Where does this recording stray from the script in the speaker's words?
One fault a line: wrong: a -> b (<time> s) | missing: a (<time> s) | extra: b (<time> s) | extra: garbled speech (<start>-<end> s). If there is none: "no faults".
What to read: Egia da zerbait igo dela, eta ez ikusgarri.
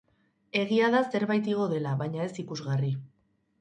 wrong: eta -> baina (2.0 s)